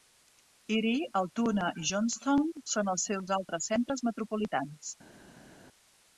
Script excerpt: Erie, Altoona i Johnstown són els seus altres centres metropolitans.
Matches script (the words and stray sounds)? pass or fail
pass